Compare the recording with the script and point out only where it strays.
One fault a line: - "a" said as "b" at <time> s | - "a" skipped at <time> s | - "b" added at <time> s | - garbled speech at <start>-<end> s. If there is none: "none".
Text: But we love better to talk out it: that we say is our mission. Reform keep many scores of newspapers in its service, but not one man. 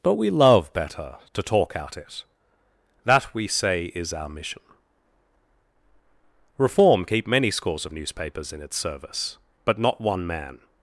none